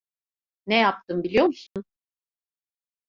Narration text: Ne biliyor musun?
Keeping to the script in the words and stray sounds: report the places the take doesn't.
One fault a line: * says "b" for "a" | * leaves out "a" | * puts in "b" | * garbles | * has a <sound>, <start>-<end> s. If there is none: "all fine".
* puts in "yaptım"
* has a dropout, 1.7-1.8 s